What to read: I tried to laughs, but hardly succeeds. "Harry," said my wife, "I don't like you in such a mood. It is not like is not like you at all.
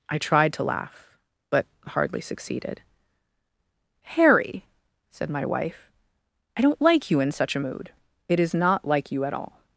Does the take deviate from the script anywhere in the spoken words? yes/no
yes